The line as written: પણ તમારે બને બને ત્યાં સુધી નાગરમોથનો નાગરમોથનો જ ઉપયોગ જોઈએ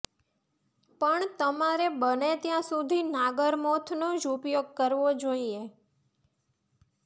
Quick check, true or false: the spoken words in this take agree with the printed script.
false